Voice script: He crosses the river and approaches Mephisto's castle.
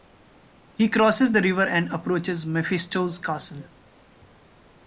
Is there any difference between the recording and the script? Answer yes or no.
no